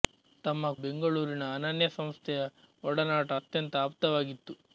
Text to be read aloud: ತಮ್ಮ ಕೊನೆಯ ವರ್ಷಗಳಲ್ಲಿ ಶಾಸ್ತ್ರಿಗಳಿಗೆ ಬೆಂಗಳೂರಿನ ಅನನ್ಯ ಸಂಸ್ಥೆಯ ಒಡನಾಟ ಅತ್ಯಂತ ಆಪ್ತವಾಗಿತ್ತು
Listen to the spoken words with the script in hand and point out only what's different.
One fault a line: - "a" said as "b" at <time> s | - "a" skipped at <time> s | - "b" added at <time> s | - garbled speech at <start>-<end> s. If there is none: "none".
- "ಕೊನೆಯ ವರ್ಷಗಳಲ್ಲಿ ಶಾಸ್ತ್ರಿಗಳಿಗೆ" skipped at 0.7 s